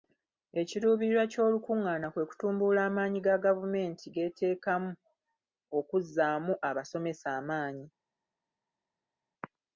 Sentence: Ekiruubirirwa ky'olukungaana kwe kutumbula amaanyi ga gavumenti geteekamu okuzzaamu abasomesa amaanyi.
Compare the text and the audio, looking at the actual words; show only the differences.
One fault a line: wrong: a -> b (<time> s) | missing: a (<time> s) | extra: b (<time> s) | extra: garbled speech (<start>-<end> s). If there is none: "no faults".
no faults